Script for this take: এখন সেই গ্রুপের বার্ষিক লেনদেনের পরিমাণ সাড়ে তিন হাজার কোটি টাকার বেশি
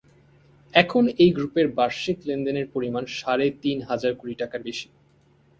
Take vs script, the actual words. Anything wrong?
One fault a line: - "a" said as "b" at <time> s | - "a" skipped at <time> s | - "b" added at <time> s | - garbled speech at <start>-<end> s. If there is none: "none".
- "সেই" said as "এই" at 1.2 s